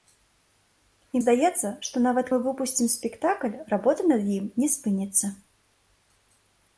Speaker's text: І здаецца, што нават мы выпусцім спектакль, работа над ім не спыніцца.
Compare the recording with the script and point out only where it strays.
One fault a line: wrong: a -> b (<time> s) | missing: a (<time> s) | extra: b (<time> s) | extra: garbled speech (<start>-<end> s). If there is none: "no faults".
no faults